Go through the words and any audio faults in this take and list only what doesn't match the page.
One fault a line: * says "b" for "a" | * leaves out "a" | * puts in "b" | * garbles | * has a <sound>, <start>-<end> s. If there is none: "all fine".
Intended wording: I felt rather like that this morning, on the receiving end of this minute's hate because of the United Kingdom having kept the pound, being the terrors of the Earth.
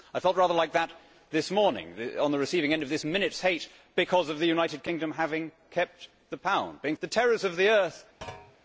* has a thud, 8.2-8.6 s